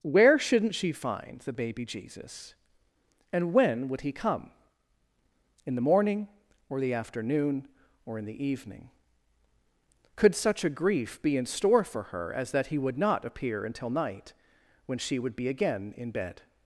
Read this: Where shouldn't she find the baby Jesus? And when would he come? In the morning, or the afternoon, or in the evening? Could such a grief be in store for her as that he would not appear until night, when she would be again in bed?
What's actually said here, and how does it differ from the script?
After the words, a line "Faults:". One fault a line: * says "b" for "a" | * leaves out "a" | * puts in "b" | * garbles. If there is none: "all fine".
Where shouldn't she find the baby Jesus? And when would he come? In the morning, or the afternoon, or in the evening? Could such a grief be in store for her as that he would not appear until night, when she would be again in bed?
Faults:
all fine